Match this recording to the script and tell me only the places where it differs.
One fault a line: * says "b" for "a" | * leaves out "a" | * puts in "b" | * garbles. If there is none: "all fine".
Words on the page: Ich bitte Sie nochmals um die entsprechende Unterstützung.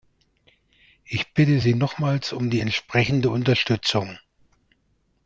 all fine